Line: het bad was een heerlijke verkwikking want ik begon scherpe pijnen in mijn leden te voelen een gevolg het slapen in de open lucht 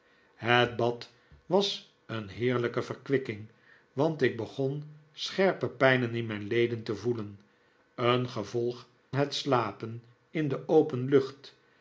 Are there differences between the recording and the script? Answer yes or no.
no